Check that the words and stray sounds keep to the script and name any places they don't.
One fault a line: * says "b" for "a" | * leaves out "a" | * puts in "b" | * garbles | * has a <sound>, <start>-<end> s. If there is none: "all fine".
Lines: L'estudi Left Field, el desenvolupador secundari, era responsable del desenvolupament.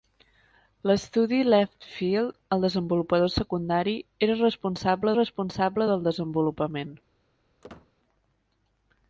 * puts in "responsable"
* has a squeak, 7.6-7.9 s